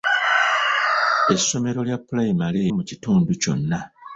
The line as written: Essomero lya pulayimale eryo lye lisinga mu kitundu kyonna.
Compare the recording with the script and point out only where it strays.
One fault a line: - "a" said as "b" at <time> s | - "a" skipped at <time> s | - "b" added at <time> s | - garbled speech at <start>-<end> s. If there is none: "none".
- "eryo lye lisinga" skipped at 2.6 s